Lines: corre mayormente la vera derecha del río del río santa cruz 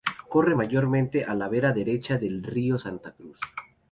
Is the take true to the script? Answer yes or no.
no